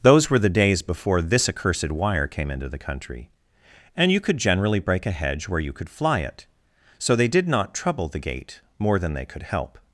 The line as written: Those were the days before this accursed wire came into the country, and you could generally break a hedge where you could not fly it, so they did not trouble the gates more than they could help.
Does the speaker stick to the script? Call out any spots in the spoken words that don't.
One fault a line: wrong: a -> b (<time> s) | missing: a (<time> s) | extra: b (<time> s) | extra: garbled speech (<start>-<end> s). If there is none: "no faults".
missing: not (5.9 s)
wrong: gates -> gate (8.2 s)